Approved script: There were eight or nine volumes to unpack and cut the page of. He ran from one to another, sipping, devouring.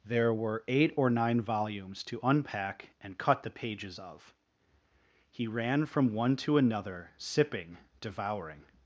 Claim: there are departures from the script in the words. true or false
true